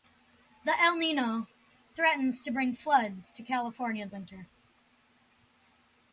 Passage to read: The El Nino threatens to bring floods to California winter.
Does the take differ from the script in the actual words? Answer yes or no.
no